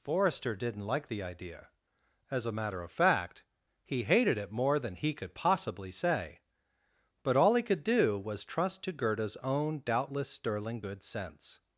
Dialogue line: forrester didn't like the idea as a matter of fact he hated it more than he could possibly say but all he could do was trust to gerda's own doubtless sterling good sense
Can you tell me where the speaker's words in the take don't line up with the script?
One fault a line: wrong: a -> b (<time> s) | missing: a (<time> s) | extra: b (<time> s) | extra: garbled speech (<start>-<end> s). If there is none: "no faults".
no faults